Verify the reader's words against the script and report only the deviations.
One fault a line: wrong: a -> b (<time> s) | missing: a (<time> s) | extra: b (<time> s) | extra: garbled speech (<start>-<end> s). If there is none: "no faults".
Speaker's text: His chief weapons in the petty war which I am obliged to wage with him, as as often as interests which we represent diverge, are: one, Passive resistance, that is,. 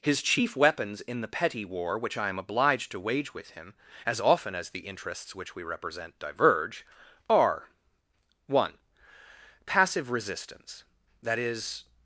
missing: as (4.2 s)
extra: the (4.7 s)